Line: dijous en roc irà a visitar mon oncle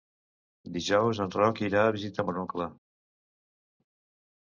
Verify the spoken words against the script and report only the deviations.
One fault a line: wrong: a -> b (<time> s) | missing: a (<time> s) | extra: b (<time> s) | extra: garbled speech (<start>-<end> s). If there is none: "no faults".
no faults